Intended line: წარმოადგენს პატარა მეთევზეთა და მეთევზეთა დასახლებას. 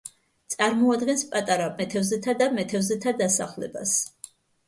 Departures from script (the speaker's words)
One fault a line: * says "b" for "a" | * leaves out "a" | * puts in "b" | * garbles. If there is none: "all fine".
all fine